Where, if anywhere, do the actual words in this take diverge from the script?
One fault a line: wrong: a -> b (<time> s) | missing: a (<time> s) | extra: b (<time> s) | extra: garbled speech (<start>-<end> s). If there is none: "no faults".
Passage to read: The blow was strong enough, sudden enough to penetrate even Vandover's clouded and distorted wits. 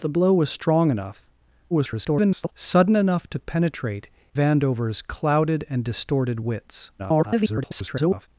extra: garbled speech (1.7-2.5 s)
missing: even (4.1 s)
extra: garbled speech (7.0-8.3 s)